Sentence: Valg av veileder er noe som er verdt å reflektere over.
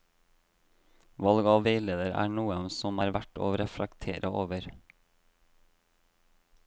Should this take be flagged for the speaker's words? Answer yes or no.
no